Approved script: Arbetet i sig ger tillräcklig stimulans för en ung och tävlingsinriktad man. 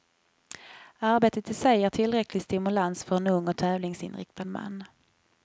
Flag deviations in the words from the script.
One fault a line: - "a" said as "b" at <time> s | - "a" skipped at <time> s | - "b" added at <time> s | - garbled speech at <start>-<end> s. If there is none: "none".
none